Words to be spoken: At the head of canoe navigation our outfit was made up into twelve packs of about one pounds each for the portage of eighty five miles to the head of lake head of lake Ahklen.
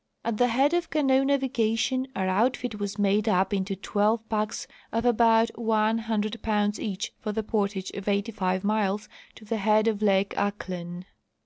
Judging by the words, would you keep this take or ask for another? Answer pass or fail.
fail